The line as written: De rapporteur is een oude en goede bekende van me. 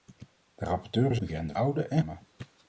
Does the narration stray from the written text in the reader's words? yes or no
yes